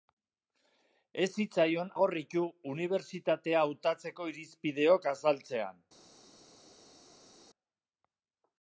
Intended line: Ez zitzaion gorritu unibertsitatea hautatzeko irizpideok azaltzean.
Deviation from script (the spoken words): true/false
false